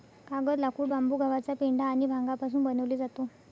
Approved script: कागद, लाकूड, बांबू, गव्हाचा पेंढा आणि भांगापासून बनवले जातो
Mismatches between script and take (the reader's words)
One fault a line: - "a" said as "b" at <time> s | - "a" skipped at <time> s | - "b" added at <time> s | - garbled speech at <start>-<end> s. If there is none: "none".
none